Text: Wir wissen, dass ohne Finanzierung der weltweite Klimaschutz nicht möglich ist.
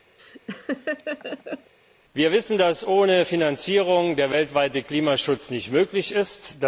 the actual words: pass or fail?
pass